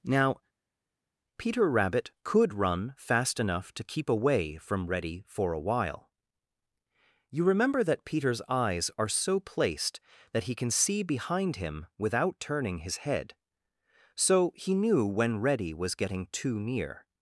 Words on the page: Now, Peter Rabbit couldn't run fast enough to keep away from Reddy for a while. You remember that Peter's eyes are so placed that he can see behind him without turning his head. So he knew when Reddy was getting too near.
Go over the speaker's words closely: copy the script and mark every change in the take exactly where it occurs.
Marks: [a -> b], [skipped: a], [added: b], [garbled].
Now, Peter Rabbit [couldn't -> could] run fast enough to keep away from Reddy for a while. You remember that Peter's eyes are so placed that he can see behind him without turning his head. So he knew when Reddy was getting too near.